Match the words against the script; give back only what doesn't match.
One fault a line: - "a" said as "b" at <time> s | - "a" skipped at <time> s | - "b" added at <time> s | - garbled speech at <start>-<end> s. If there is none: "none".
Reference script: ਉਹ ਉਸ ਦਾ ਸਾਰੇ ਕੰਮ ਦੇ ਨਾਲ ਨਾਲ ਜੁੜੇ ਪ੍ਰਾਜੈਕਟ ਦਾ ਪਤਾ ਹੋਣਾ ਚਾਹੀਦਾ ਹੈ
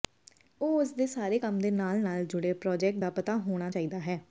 - "ਦਾ" said as "ਦੇ" at 0.9 s